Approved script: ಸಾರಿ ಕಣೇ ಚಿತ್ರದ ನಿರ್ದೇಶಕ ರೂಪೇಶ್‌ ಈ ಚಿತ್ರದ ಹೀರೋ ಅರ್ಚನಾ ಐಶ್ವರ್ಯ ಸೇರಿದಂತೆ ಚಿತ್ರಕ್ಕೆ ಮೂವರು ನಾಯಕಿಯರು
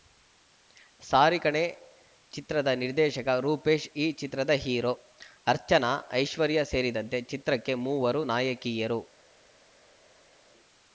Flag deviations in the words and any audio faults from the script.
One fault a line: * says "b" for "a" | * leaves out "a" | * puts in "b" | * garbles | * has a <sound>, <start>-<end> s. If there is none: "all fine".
all fine